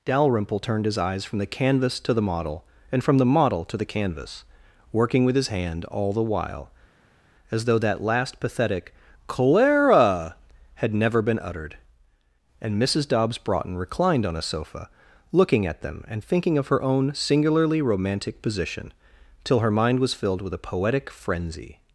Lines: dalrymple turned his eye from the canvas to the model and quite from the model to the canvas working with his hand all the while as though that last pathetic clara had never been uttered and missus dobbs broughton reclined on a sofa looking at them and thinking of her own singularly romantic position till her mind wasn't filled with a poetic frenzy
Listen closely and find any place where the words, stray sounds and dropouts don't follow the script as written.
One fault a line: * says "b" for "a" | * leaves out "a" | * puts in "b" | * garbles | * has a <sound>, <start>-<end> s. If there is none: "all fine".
* says "eyes" for "eye"
* leaves out "quite"
* says "was" for "wasn't"